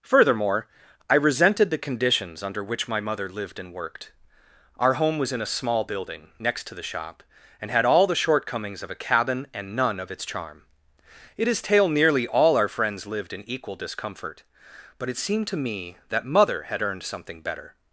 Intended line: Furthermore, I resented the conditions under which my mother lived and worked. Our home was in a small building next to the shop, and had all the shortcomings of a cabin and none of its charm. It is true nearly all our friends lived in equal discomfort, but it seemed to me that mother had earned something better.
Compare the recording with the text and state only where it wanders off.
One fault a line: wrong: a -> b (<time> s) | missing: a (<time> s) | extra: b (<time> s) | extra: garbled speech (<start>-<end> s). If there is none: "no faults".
wrong: true -> tale (11.6 s)